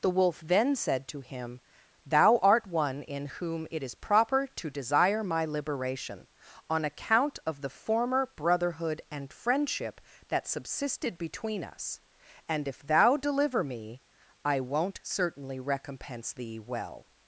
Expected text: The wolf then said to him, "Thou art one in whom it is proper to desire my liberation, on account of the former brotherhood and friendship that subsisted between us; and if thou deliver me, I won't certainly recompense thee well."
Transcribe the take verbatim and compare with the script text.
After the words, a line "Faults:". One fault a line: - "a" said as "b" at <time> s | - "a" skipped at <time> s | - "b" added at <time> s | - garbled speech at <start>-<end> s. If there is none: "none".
The wolf then said to him, "Thou art one in whom it is proper to desire my liberation, on account of the former brotherhood and friendship that subsisted between us; and if thou deliver me, I won't certainly recompense thee well."
Faults:
none